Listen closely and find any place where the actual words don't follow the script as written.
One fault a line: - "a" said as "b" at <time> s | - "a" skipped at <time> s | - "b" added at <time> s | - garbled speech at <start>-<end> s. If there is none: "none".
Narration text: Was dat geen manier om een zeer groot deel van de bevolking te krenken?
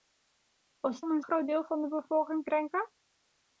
- "dat geen manier" skipped at 1.0 s
- "zeer" skipped at 1.2 s
- "te" skipped at 2.5 s